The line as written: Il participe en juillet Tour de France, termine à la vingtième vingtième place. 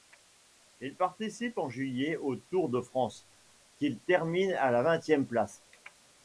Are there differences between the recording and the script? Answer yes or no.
yes